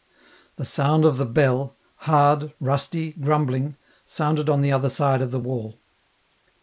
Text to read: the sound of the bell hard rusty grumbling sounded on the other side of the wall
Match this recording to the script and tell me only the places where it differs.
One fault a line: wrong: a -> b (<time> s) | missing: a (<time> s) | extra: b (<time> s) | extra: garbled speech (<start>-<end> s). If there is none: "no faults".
no faults